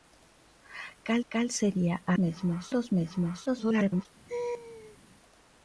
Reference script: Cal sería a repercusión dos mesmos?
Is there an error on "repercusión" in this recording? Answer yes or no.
yes